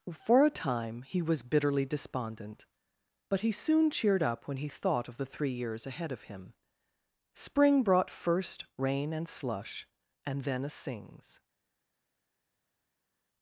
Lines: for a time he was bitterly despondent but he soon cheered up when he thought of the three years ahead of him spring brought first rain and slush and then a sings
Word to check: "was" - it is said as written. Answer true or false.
true